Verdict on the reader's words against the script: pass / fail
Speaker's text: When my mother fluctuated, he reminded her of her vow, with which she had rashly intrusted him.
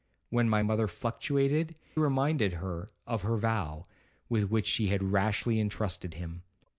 fail